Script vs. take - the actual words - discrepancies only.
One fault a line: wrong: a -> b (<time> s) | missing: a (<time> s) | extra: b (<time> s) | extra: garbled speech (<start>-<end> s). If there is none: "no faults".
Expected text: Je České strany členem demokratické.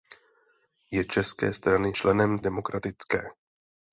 no faults